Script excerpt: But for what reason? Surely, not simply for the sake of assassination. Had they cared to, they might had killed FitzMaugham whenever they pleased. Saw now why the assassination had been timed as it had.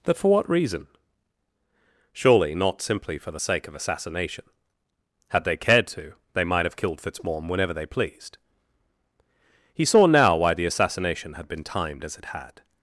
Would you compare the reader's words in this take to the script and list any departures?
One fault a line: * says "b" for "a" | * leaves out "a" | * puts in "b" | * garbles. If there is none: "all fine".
* says "have" for "had"
* puts in "He"